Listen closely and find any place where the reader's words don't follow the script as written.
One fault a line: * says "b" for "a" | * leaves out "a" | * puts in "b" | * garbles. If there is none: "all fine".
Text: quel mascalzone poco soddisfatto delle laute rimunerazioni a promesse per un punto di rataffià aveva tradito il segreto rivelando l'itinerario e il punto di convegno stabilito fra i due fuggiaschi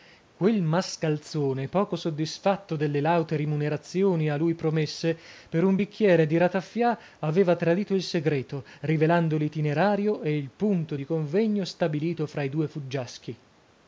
* puts in "lui"
* says "bicchiere" for "punto"